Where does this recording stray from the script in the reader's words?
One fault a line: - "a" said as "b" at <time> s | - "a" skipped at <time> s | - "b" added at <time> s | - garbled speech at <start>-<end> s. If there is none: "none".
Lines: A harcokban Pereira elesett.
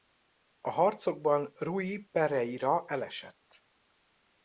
- "Rui" added at 1.6 s